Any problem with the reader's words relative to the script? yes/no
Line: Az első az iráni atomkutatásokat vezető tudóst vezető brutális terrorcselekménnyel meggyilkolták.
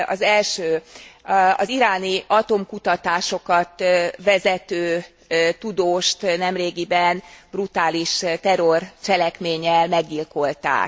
yes